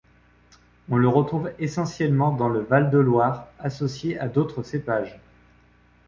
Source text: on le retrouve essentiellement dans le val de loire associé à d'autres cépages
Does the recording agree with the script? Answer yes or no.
yes